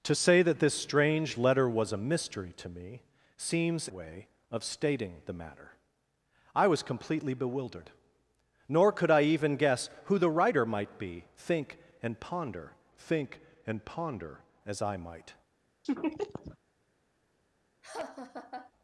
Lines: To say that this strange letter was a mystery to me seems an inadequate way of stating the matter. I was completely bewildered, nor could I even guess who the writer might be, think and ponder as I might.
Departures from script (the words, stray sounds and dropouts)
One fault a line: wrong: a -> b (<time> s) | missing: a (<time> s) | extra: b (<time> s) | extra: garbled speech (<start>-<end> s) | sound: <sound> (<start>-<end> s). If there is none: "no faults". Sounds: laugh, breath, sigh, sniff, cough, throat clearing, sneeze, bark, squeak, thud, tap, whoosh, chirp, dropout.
missing: an inadequate (3.9 s)
extra: think and ponder (13.0 s)
sound: laugh (15.8-16.6 s)
sound: laugh (17.8-18.7 s)